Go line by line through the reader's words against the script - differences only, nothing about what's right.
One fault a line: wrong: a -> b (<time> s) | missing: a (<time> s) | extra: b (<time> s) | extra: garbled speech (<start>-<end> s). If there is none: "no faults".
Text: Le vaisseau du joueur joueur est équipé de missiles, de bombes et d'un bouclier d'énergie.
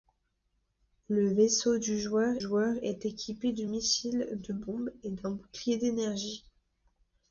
no faults